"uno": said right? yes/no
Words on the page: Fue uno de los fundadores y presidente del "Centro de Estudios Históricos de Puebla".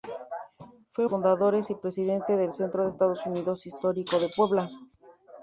no